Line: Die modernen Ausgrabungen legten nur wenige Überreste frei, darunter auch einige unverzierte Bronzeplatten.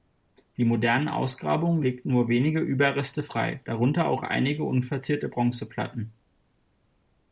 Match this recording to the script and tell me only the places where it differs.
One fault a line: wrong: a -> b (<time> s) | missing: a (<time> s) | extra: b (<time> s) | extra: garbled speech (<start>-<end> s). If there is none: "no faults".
no faults